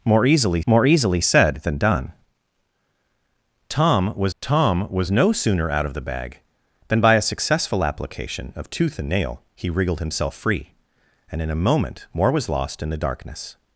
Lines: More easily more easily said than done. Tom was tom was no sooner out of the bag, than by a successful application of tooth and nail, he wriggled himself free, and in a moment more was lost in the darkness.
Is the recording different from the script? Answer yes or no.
no